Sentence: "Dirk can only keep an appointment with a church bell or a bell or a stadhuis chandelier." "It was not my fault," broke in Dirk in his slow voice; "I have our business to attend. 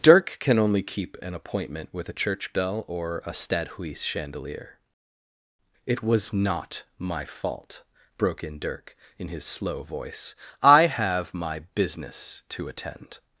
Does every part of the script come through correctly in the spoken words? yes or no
no